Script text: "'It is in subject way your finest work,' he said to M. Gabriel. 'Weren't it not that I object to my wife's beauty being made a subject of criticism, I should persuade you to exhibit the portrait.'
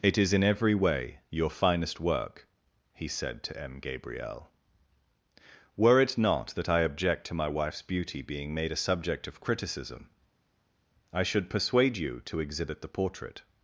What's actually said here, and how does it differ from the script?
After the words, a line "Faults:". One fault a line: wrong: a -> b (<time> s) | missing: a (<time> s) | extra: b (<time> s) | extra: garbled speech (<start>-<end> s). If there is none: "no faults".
"'It is in every way your finest work,' he said to M. Gabriel. 'Were it not that I object to my wife's beauty being made a subject of criticism, I should persuade you to exhibit the portrait.'
Faults:
wrong: subject -> every (0.4 s)
wrong: Weren't -> Were (5.8 s)